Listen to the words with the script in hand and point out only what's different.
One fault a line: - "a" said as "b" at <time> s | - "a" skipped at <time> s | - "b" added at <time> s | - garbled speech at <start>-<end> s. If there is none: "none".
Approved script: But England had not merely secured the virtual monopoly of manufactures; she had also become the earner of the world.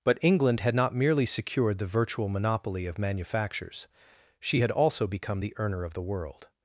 none